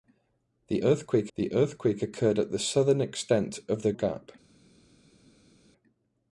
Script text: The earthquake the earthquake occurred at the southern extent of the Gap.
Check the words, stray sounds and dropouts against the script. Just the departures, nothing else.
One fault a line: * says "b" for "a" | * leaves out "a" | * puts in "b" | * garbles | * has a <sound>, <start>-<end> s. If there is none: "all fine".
all fine